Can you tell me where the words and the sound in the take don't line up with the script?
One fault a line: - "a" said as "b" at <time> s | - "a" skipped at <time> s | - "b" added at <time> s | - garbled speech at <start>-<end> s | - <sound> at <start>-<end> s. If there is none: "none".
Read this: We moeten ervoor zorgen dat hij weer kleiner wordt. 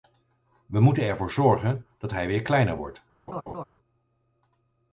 - laugh at 3.3-3.6 s